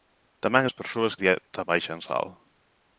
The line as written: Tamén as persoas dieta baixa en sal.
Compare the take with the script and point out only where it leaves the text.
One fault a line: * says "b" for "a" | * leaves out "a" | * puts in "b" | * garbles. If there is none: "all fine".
all fine